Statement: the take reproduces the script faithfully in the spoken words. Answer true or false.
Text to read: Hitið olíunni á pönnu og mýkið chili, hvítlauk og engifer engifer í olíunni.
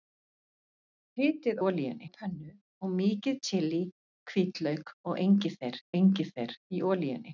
true